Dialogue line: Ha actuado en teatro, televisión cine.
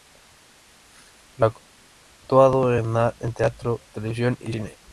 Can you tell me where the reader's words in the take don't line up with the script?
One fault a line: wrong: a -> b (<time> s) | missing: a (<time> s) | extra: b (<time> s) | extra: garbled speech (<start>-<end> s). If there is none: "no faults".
extra: y (4.4 s)